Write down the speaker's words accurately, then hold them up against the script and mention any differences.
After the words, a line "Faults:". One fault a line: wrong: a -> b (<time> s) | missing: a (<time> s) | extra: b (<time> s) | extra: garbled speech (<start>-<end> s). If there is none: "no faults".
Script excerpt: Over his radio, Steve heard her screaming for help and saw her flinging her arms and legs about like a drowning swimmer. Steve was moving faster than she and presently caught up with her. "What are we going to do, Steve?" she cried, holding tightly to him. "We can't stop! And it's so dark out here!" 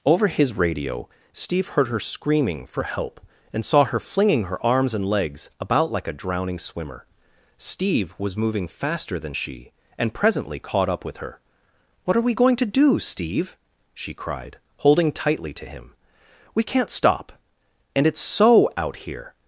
Over his radio, Steve heard her screaming for help and saw her flinging her arms and legs about like a drowning swimmer. Steve was moving faster than she and presently caught up with her. "What are we going to do, Steve?" she cried, holding tightly to him. "We can't stop! And it's so out here!"
Faults:
missing: dark (18.7 s)